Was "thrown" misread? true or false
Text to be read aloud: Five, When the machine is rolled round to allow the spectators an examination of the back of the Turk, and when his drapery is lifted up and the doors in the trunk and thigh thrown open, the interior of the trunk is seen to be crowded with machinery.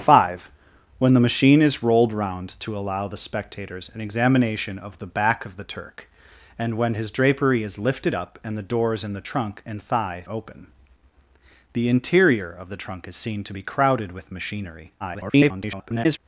true